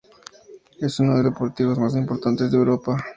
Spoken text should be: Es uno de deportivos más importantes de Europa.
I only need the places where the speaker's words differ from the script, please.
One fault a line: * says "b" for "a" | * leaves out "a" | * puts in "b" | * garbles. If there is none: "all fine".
all fine